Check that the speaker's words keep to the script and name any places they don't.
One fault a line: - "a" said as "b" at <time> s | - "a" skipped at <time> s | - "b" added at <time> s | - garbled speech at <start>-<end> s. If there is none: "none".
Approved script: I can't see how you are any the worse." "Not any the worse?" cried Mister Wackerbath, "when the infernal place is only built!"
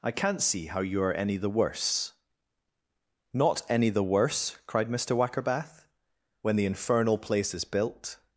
- "only" skipped at 7.6 s